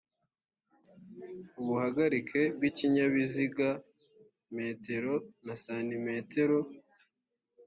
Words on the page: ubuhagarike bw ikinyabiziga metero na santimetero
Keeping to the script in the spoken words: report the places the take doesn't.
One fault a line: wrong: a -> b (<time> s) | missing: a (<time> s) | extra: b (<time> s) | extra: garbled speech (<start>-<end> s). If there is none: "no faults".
no faults